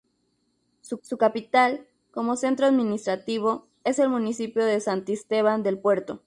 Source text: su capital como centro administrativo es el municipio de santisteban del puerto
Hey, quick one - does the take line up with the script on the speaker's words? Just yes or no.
no